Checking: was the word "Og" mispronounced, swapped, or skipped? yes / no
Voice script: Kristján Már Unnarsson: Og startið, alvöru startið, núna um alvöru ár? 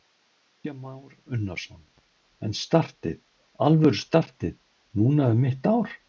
yes